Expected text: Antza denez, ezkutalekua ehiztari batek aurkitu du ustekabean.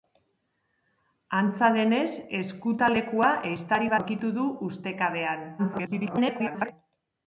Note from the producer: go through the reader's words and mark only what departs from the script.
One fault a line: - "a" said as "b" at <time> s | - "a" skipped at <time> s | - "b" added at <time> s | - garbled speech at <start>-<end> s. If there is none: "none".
- "batek" skipped at 4.0 s
- garbled speech at 5.6-6.7 s